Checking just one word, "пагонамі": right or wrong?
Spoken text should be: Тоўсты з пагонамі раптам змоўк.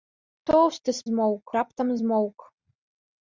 wrong